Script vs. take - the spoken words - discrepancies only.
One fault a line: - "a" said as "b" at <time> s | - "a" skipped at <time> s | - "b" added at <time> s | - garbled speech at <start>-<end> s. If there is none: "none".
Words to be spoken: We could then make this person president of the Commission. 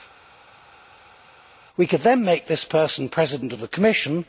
none